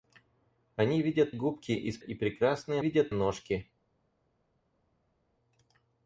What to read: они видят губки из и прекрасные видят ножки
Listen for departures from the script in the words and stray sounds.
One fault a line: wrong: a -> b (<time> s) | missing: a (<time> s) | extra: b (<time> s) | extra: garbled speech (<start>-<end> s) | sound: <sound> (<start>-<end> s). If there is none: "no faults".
no faults